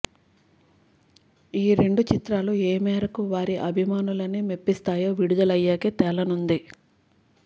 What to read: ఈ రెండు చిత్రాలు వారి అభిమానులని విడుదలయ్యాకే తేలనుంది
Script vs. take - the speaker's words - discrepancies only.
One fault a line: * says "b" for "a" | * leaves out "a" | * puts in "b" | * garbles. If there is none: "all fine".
* puts in "ఏ మేరకు"
* puts in "మెప్పిస్తాయో"